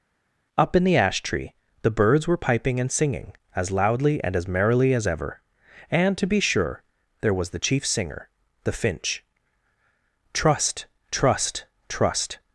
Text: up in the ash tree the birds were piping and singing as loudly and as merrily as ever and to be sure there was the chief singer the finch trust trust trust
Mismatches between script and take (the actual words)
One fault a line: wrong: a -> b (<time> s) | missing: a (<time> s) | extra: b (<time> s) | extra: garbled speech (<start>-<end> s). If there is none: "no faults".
no faults